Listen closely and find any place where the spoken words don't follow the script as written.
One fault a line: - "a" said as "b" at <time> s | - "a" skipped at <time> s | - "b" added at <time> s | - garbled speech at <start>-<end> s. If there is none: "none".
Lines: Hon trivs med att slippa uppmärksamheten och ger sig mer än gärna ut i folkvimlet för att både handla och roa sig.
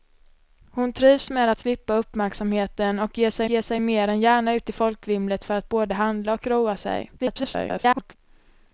- "ger sig" added at 3.5 s
- garbled speech at 7.2-8.2 s